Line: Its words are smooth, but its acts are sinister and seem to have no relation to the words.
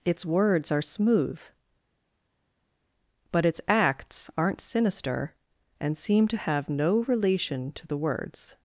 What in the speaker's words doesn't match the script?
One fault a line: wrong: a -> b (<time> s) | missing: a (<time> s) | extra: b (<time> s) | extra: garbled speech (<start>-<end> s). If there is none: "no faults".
wrong: are -> aren't (4.4 s)